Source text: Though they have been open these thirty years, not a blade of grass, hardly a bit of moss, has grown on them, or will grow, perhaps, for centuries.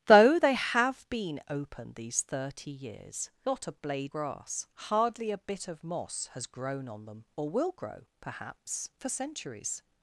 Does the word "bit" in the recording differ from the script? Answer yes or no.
no